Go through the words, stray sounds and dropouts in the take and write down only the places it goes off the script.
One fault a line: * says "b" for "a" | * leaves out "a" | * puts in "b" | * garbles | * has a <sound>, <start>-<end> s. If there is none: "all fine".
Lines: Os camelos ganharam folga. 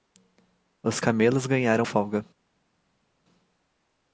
all fine